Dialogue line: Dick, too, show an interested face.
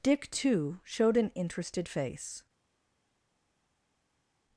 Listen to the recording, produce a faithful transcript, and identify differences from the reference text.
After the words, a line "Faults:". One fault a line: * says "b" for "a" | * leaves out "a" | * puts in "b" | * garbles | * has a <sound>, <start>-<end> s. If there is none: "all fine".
Dick, too, showed an interested face.
Faults:
* says "showed" for "show"